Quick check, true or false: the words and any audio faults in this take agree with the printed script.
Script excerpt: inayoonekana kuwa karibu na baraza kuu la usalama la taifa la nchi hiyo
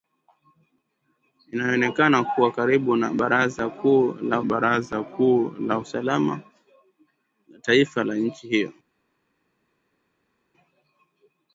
false